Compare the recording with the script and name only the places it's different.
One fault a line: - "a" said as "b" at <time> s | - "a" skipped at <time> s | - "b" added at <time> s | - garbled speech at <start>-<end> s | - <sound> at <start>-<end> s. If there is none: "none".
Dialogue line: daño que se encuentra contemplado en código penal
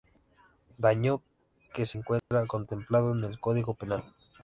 - dropout at 2.2-2.3 s
- "el" added at 3.2 s